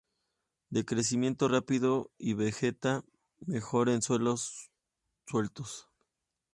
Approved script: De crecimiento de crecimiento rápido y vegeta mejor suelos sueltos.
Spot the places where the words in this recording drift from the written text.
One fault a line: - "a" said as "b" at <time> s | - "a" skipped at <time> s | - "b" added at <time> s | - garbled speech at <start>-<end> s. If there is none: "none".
- "de crecimiento" skipped at 1.5 s
- "en" added at 3.9 s